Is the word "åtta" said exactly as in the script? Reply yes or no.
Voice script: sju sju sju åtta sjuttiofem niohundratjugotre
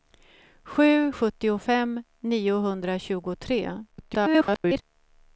no